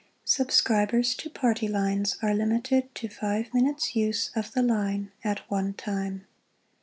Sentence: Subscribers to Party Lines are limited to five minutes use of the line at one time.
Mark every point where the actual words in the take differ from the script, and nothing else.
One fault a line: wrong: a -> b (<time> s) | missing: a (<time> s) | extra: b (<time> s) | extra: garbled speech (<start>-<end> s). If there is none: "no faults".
no faults